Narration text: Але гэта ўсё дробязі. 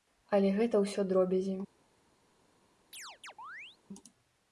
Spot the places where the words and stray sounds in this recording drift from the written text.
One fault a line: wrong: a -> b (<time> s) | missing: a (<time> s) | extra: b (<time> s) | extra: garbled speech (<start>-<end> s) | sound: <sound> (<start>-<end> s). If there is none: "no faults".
sound: chirp (2.9-3.8 s)